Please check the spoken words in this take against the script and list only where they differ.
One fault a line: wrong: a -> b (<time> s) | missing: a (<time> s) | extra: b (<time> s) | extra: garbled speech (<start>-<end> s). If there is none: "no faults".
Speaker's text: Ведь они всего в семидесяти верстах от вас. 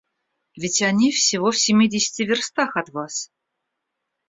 no faults